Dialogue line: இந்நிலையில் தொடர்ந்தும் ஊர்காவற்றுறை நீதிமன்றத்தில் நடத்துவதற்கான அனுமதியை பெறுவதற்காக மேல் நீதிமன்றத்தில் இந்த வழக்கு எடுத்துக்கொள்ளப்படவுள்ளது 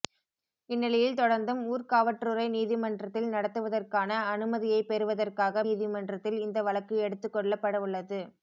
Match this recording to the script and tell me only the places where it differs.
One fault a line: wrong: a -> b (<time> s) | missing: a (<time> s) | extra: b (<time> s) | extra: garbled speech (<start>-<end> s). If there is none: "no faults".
missing: மேல் (5.6 s)